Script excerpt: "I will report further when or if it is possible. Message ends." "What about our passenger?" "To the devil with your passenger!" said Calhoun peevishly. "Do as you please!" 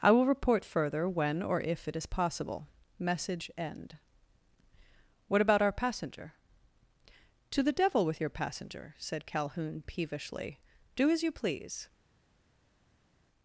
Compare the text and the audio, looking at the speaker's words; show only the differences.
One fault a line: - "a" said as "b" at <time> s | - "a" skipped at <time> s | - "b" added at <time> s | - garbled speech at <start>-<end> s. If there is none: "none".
- "ends" said as "end" at 3.6 s